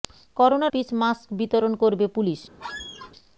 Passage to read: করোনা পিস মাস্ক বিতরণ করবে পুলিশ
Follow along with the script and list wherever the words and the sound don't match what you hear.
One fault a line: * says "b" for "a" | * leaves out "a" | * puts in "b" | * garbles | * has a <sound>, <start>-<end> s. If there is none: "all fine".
* has a squeak, 2.6-3.1 s